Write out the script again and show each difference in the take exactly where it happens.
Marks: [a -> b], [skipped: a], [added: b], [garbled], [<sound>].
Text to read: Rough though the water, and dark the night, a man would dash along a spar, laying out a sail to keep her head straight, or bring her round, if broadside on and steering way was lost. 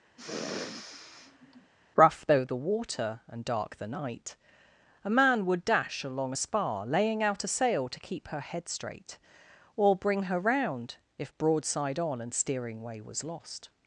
[sniff] Rough though the water, and dark the night, a man would dash along a spar, laying out a sail to keep her head straight, or bring her round, if broadside on and steering way was lost.